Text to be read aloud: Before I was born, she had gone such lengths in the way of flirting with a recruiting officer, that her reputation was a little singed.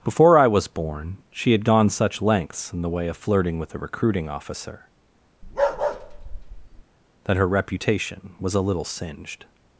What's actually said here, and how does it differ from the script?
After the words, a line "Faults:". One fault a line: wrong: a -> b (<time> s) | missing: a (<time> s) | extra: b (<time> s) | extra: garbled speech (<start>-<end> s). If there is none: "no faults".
Before I was born, she had gone such lengths in the way of flirting with a recruiting officer, that her reputation was a little singed.
Faults:
no faults